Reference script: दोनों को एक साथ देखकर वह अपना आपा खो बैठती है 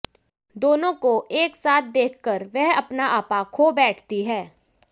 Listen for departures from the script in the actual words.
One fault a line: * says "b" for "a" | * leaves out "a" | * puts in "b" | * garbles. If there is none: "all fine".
all fine